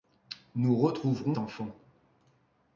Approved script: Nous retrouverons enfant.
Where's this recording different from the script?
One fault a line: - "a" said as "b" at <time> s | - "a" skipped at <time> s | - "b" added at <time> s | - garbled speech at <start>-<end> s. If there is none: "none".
none